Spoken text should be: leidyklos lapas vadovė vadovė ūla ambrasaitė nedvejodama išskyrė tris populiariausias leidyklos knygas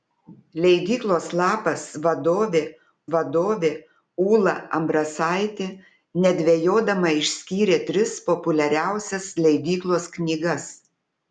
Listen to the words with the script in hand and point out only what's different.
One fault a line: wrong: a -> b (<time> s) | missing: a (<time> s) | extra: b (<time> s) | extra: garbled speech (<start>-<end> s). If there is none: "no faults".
no faults